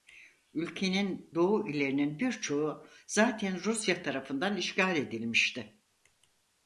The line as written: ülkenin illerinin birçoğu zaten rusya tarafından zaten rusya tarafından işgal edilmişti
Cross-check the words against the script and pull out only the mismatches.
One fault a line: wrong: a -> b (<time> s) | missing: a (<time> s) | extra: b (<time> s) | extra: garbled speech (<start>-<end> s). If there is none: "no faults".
extra: doğu (1.3 s)
missing: zaten rusya tarafından (4.6 s)